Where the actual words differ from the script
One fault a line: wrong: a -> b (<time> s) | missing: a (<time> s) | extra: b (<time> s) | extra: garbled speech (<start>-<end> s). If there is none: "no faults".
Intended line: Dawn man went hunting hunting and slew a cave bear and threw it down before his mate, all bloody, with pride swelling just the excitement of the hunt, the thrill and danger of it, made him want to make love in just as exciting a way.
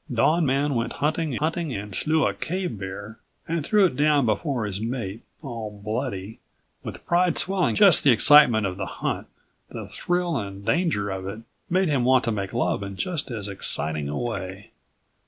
no faults